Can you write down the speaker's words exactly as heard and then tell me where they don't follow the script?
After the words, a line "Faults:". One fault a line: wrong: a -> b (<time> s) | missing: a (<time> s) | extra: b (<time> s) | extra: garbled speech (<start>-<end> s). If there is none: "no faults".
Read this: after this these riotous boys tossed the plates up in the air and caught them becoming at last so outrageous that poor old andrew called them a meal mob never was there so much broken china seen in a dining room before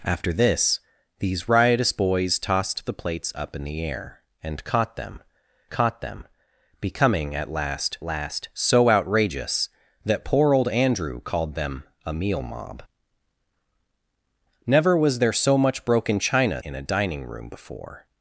after this these riotous boys tossed the plates up in the air and caught them caught them becoming at last last so outrageous that poor old andrew called them a meal mob never was there so much broken china in a dining room before
Faults:
extra: caught them (5.7 s)
extra: last (8.0 s)
missing: seen (16.6 s)